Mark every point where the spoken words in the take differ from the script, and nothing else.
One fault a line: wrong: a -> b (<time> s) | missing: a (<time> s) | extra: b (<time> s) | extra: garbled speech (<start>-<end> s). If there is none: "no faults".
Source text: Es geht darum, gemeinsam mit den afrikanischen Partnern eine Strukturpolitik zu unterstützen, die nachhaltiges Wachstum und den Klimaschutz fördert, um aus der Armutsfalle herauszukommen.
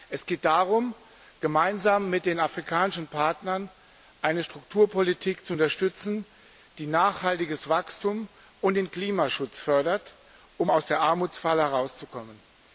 no faults